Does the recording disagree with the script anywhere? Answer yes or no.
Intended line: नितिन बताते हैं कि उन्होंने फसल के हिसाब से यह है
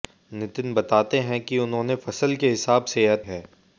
no